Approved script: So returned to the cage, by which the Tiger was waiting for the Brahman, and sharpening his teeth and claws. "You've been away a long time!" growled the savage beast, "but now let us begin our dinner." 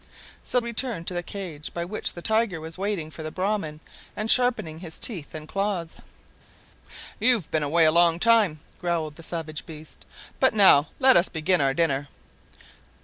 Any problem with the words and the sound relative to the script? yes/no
no